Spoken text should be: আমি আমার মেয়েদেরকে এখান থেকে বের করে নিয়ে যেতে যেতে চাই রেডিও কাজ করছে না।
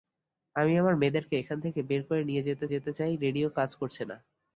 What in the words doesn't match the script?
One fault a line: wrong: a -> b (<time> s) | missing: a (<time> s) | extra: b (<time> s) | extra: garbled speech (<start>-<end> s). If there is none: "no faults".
no faults